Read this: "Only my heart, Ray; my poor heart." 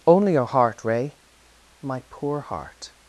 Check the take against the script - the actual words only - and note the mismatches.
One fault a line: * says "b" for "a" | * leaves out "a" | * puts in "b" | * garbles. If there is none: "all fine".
* says "your" for "my"